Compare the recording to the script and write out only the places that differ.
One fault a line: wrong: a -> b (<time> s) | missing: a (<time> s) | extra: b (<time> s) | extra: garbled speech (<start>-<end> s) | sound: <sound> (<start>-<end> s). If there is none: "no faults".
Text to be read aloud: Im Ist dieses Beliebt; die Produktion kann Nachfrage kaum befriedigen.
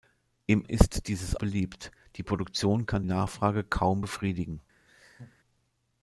sound: laugh (4.9-5.4 s)